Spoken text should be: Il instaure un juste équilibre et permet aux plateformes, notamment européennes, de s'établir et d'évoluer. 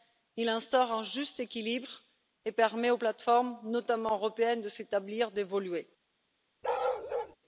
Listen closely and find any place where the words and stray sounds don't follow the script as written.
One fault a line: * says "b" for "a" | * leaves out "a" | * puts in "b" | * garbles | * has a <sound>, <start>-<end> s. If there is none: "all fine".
* has a bark, 6.6-7.4 s